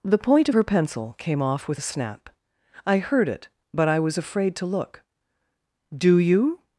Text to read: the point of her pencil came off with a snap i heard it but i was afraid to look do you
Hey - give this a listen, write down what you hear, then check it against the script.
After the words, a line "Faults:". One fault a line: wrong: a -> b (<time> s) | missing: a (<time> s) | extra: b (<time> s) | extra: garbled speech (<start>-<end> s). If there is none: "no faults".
the point of her pencil came off with a snap i heard it but i was afraid to look do you
Faults:
no faults